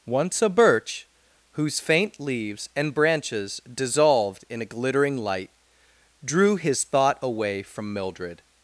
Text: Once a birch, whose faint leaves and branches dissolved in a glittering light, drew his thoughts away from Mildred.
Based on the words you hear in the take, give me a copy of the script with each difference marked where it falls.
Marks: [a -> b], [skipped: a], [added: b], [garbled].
Once a birch, whose faint leaves and branches dissolved in a glittering light, drew his [thoughts -> thought] away from Mildred.